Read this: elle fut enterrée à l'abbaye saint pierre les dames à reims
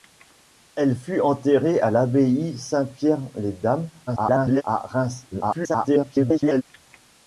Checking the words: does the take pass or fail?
fail